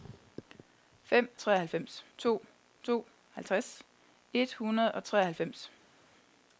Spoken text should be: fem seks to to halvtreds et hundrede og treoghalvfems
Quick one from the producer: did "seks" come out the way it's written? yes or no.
no